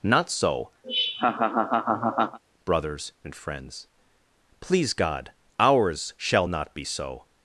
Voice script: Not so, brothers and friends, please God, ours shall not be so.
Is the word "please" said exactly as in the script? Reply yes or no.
yes